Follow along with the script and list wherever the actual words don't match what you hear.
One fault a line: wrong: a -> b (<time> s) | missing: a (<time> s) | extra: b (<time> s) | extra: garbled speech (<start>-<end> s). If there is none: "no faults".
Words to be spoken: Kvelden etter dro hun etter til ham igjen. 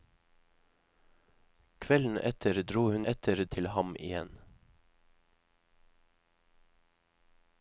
no faults